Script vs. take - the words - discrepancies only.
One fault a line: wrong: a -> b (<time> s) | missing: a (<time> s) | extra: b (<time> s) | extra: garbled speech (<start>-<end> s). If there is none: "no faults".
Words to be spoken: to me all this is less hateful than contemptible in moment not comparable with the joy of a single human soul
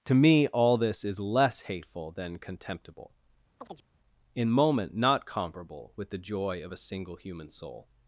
no faults